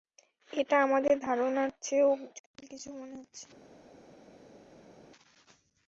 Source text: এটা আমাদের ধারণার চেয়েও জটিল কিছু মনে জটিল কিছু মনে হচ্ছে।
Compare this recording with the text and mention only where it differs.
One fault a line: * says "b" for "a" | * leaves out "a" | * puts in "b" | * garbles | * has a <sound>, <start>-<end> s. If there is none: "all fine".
* leaves out "জটিল কিছু মনে"